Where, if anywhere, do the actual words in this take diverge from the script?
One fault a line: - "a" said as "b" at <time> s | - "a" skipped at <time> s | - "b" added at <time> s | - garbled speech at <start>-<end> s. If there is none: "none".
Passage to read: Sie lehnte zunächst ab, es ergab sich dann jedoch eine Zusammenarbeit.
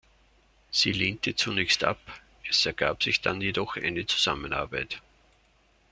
none